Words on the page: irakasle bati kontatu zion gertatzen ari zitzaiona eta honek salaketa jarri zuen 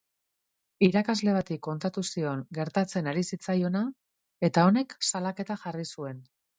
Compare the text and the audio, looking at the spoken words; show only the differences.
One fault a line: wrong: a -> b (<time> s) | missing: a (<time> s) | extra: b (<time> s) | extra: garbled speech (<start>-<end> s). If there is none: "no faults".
no faults